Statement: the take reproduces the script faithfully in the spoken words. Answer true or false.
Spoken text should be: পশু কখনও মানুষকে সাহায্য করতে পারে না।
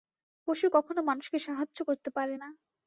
true